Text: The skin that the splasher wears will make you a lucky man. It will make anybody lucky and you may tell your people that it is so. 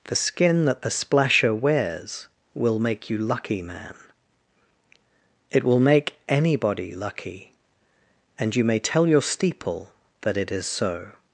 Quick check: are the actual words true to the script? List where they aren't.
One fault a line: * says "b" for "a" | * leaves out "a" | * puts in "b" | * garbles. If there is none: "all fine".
* leaves out "a"
* says "steeple" for "people"